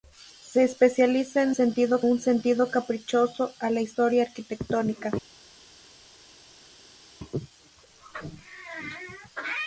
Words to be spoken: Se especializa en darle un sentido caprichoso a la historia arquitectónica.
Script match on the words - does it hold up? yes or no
no